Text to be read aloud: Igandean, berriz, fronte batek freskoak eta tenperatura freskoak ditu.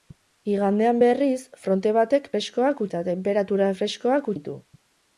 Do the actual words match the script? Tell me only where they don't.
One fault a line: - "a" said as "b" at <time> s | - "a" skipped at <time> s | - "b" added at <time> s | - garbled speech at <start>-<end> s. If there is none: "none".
none